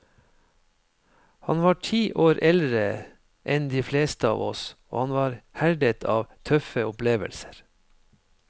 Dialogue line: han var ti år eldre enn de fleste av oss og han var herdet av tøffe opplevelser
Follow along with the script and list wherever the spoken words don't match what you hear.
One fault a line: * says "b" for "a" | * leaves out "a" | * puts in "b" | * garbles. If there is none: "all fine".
all fine